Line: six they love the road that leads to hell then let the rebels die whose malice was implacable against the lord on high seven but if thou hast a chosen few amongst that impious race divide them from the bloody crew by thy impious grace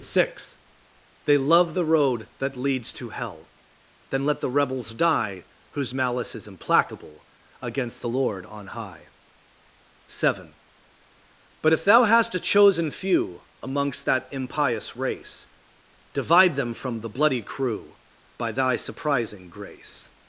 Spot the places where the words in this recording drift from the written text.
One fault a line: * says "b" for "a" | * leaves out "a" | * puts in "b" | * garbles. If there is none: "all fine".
* says "is" for "was"
* says "surprising" for "impious"